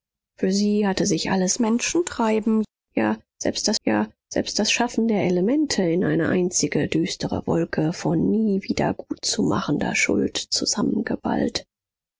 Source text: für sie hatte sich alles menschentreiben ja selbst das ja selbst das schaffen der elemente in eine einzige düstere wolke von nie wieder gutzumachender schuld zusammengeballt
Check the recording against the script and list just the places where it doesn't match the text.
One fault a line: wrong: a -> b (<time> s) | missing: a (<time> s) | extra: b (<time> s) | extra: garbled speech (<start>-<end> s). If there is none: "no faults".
no faults